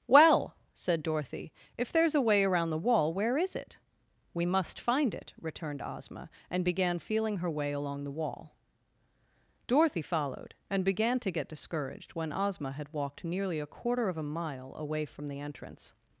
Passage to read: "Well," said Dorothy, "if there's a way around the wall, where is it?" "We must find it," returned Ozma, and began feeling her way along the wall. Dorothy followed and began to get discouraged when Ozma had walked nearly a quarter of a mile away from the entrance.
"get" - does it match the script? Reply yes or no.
yes